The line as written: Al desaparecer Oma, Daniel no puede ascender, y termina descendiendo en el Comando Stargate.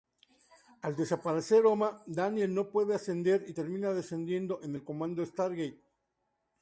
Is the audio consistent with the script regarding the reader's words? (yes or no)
yes